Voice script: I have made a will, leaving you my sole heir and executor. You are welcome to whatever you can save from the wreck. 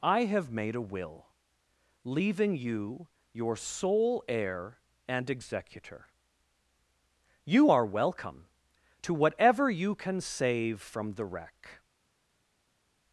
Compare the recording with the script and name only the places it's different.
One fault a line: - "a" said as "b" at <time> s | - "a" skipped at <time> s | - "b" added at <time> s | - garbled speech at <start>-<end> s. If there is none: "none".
- "my" said as "your" at 3.3 s